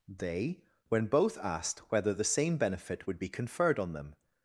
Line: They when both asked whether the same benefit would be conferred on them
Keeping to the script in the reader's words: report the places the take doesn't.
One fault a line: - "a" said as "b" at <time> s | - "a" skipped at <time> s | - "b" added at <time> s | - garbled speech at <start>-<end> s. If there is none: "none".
none